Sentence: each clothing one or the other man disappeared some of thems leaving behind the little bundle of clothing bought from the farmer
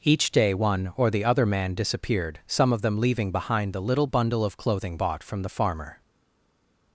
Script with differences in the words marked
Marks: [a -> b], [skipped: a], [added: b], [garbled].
each [clothing -> day] one or the other man disappeared some of [thems -> them] leaving behind the little bundle of clothing bought from the farmer